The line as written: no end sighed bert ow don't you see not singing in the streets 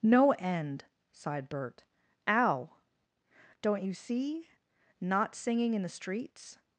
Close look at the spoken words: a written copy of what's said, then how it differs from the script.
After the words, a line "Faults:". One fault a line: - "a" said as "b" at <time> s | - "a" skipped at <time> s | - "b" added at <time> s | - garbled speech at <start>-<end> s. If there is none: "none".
no end sighed bert ow don't you see not singing in the streets
Faults:
none